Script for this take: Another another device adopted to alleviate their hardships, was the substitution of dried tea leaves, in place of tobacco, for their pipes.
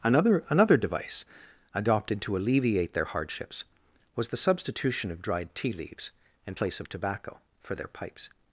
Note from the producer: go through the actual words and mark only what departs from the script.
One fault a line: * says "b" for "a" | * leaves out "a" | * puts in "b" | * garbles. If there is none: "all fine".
all fine